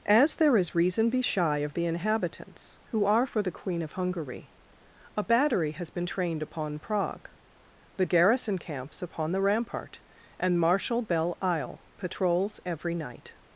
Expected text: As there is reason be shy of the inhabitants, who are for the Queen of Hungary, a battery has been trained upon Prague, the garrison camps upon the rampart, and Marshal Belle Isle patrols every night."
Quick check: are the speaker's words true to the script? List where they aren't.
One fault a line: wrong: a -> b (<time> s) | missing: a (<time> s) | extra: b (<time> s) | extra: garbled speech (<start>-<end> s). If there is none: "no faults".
no faults